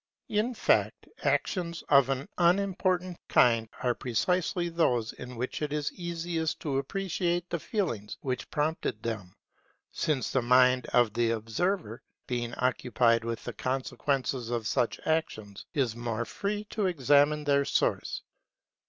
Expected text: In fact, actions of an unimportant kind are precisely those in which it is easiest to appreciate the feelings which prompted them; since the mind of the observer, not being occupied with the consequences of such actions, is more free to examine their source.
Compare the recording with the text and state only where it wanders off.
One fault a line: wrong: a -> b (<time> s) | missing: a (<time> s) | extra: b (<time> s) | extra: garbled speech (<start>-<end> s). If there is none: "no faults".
missing: not (12.0 s)